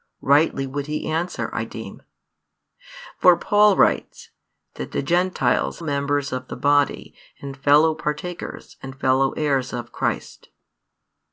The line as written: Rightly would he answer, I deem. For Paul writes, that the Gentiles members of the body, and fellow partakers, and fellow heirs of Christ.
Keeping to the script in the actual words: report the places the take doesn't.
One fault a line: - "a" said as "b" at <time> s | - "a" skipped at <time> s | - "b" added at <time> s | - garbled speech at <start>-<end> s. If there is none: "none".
none